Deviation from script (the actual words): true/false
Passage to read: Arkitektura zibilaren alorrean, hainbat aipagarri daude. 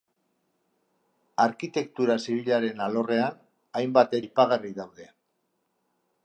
false